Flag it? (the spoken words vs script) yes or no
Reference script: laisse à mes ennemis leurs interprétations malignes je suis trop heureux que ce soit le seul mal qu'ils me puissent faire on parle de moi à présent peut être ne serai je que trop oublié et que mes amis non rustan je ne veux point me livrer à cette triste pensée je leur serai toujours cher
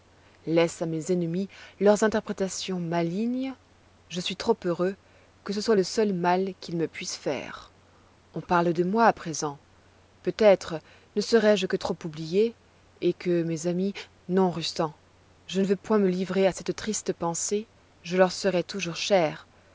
no